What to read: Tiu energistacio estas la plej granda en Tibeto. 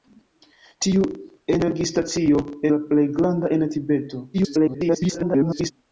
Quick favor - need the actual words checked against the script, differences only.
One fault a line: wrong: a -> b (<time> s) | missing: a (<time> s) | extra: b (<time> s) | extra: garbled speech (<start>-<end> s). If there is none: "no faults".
missing: estas (2.4 s)
extra: garbled speech (4.3-5.7 s)